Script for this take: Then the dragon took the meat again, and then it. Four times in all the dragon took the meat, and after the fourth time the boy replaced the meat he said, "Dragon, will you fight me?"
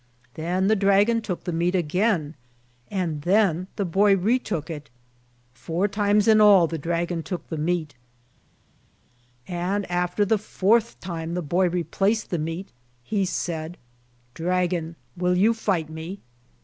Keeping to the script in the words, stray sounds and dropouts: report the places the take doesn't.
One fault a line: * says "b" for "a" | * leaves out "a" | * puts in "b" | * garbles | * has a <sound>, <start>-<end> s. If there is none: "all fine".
* puts in "the boy retook"